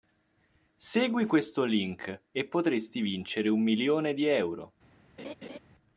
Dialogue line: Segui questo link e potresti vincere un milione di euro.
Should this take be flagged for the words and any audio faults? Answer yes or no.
yes